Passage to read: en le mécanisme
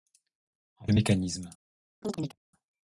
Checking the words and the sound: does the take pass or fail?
fail